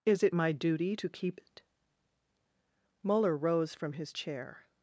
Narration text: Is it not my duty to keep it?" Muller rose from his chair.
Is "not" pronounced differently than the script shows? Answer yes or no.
yes